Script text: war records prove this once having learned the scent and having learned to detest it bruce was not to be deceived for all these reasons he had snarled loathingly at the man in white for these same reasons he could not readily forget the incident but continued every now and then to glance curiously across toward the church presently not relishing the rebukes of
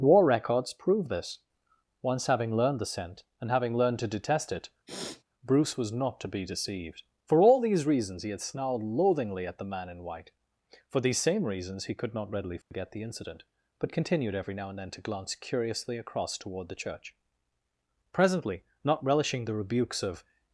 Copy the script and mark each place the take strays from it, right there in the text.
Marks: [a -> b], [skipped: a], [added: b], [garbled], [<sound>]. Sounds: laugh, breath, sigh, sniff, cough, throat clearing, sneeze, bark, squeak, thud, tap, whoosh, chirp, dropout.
war records prove this once having learned the scent and having learned to detest it [sniff] bruce was not to be deceived for all these reasons he had snarled loathingly at the man in white for these same reasons he could not readily forget [dropout] the incident but continued every now and then to glance curiously across toward the church presently not relishing the rebukes of